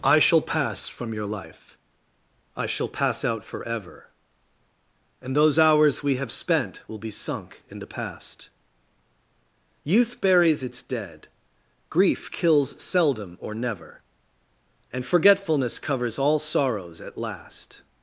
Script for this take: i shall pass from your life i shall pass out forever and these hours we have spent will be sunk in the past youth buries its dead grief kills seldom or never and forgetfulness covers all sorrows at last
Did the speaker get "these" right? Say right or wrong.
wrong